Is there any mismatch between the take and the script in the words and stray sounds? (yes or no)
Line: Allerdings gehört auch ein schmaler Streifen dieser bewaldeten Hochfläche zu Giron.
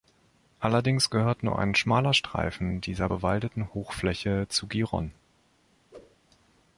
yes